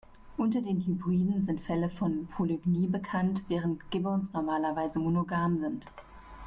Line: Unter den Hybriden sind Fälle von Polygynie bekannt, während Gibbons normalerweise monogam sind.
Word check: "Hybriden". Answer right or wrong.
right